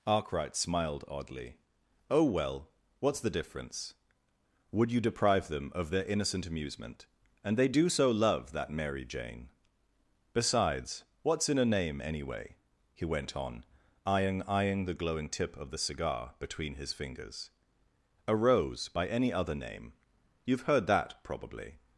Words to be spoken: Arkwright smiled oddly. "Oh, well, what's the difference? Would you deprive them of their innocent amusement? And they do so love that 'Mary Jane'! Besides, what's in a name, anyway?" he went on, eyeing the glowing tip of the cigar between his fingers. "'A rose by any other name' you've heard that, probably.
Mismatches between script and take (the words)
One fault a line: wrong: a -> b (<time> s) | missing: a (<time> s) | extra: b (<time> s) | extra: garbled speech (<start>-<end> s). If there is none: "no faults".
extra: eyeing (14.4 s)